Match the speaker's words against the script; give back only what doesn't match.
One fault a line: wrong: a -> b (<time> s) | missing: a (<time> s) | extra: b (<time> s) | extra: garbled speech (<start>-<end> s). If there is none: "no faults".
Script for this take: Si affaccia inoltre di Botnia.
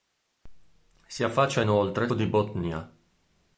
no faults